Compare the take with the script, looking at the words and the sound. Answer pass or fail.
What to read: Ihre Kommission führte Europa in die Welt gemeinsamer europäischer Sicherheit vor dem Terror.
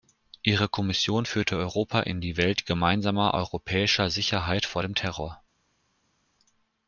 pass